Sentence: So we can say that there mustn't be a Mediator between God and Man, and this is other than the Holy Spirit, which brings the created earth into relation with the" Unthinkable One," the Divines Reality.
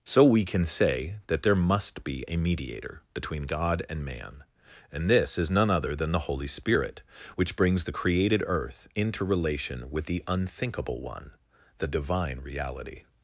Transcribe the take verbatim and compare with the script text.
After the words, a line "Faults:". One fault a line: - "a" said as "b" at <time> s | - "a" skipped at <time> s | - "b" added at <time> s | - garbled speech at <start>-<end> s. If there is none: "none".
So we can say that there must be a Mediator between God and Man, and this is none other than the Holy Spirit, which brings the created earth into relation with the" Unthinkable One," the Divine Reality.
Faults:
- "mustn't" said as "must" at 1.6 s
- "none" added at 5.5 s
- "Divines" said as "Divine" at 11.9 s